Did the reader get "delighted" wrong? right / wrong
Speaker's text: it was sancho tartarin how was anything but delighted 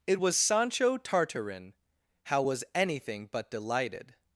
right